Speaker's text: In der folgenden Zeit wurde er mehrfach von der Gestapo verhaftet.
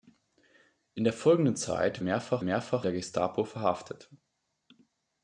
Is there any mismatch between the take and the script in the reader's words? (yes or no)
yes